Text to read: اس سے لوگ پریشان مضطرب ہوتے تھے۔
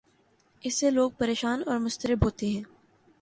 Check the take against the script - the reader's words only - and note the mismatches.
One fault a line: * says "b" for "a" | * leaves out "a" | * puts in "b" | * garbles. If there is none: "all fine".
* puts in "اور"
* says "ہیں" for "تھے"